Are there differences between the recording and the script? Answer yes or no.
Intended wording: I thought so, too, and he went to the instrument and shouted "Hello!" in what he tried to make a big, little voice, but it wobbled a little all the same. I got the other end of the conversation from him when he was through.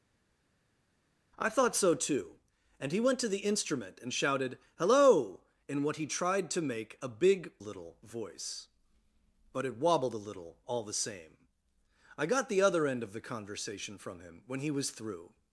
no